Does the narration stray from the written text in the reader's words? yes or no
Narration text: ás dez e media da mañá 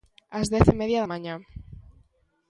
no